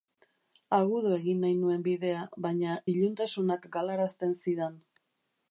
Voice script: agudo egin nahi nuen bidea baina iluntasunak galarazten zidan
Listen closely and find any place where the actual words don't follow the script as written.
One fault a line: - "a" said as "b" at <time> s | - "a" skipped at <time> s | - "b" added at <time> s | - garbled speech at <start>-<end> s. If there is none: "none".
none